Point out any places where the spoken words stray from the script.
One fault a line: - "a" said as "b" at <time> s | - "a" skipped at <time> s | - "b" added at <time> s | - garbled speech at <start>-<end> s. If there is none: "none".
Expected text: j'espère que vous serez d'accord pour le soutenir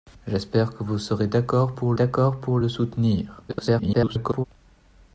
- "d'accord pour" added at 1.9 s
- garbled speech at 3.5-4.5 s